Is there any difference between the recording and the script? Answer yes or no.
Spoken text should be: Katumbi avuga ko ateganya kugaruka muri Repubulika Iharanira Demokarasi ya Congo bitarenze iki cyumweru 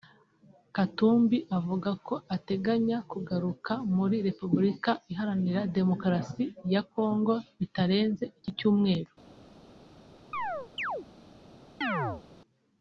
no